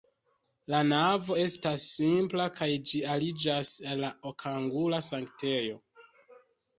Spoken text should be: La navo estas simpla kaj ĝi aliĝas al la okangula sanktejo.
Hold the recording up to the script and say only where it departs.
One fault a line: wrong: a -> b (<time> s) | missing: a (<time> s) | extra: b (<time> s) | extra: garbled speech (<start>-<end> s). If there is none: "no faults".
no faults